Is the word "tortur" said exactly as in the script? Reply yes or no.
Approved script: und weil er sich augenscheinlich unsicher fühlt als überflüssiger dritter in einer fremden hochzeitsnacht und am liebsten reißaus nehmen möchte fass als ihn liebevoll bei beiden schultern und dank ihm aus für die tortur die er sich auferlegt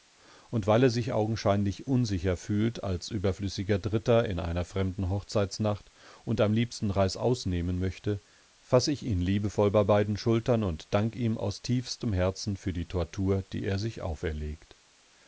yes